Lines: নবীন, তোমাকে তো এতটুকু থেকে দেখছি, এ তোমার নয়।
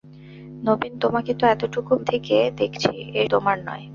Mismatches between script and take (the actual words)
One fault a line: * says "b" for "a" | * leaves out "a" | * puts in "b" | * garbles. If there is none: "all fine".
all fine